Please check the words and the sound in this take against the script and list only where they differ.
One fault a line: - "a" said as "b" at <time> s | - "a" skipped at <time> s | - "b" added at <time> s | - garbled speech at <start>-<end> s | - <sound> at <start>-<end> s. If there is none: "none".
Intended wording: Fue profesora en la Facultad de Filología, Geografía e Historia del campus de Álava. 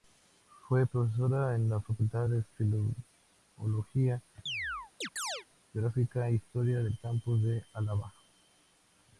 - chirp at 4.5-5.5 s